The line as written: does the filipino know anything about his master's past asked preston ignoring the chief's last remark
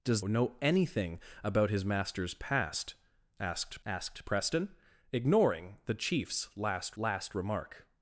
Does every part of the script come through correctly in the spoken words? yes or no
no